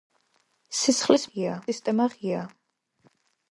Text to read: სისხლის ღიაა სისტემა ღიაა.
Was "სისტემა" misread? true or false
false